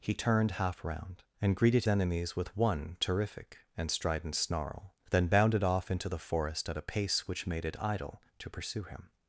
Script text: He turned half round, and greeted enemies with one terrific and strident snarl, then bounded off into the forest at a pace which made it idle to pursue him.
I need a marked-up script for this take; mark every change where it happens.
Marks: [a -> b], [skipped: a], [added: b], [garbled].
He turned half round, and greeted enemies with one terrific and strident snarl, then bounded off into the forest at a pace which made it idle to pursue him.